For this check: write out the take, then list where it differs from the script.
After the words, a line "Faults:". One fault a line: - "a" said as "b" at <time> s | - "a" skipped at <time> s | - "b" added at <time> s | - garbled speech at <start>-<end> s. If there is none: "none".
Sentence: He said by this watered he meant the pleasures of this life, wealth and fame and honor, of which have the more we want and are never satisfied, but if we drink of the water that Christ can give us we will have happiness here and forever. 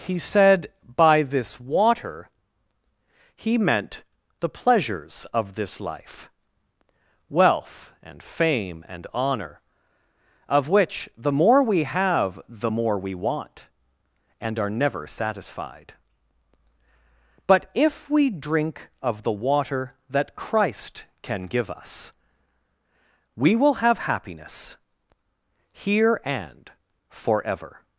He said by this water he meant the pleasures of this life, wealth and fame and honor, of which the more we have the more we want and are never satisfied, but if we drink of the water that Christ can give us we will have happiness here and forever.
Faults:
- "watered" said as "water" at 1.6 s
- "the more we" added at 11.2 s